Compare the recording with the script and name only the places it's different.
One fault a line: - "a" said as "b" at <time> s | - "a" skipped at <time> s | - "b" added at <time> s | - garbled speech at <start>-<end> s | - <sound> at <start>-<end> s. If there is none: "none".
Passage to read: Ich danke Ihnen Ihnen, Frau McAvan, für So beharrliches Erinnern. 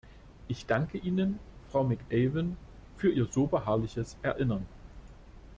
- "Ihnen" skipped at 1.4 s
- "Ihr" added at 3.1 s